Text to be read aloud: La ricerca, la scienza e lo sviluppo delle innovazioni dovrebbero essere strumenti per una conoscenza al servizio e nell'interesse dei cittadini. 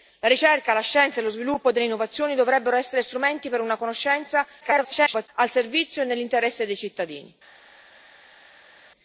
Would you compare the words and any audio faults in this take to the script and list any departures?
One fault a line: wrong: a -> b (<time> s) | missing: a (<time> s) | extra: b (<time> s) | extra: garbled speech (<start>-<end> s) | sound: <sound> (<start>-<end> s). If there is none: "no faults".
extra: garbled speech (4.6-5.3 s)